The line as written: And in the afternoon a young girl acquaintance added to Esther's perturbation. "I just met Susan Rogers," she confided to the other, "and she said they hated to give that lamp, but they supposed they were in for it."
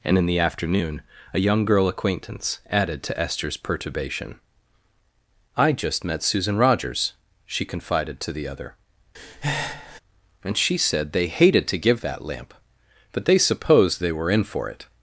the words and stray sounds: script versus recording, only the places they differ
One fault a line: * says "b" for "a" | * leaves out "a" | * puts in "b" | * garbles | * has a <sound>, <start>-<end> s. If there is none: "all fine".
* has a breath, 9.1-10.0 s